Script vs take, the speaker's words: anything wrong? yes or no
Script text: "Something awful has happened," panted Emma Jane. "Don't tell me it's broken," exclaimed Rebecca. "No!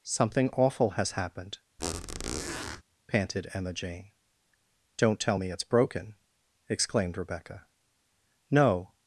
no